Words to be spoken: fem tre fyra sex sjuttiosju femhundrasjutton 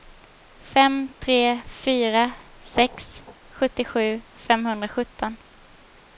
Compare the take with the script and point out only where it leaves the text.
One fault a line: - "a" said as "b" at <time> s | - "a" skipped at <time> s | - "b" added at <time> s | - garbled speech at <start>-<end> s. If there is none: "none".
none